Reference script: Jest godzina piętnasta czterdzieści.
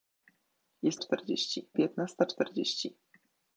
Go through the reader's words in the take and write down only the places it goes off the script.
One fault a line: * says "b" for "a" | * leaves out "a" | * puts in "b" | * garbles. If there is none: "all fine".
* says "czterdzieści" for "godzina"